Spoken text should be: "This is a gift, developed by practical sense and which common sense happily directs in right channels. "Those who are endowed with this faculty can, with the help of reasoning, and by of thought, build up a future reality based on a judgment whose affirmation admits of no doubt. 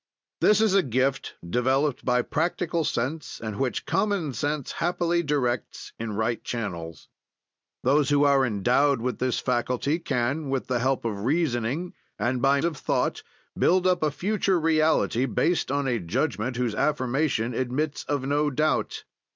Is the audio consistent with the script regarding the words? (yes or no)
yes